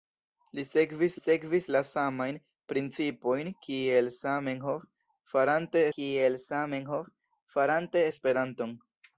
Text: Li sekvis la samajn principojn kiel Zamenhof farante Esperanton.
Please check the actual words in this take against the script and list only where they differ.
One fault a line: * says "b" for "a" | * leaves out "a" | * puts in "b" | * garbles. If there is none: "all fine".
* puts in "sekvis"
* puts in "kiel Zamenhof farante"